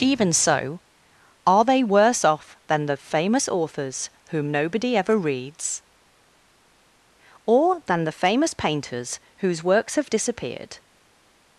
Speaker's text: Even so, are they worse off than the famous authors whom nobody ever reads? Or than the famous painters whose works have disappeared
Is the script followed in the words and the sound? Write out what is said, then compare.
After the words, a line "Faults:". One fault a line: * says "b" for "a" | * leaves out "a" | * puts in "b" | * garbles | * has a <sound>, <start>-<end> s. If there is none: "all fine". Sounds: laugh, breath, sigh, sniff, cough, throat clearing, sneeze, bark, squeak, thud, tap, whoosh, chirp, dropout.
Even so, are they worse off than the famous authors whom nobody ever reads? Or than the famous painters whose works have disappeared
Faults:
all fine